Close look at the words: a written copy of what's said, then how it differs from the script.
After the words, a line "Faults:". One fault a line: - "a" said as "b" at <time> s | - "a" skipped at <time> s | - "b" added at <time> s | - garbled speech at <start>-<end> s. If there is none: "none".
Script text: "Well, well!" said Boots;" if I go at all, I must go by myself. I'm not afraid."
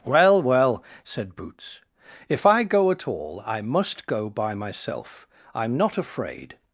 "Well, well!" said Boots;" if I go at all, I must go by myself. I'm not afraid."
Faults:
none